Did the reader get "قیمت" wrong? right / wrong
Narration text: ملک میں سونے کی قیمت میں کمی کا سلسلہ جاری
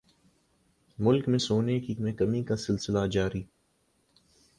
wrong